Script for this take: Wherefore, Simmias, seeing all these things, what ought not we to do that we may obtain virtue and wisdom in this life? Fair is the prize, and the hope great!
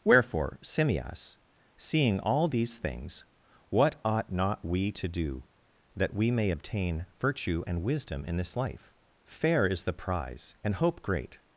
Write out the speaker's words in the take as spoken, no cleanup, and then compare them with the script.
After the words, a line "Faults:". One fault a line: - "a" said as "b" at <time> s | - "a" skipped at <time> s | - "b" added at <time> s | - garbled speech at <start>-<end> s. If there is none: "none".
Wherefore, Simmias, seeing all these things, what ought not we to do that we may obtain virtue and wisdom in this life? Fair is the prize, and hope great!
Faults:
- "the" skipped at 10.8 s